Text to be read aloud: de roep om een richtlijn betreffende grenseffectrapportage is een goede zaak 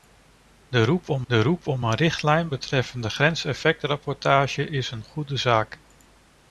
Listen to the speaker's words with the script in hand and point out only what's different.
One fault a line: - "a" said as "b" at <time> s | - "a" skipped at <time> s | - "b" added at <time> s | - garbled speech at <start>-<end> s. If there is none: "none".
- "de roep om" added at 1.3 s